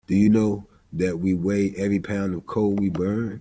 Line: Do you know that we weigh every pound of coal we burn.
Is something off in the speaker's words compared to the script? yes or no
no